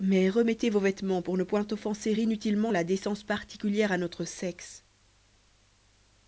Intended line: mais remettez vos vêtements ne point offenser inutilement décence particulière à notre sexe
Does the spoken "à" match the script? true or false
true